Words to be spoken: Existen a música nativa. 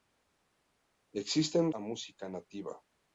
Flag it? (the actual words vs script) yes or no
no